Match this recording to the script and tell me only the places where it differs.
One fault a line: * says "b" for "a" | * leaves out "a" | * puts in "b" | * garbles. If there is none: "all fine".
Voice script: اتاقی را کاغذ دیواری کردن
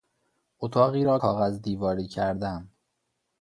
all fine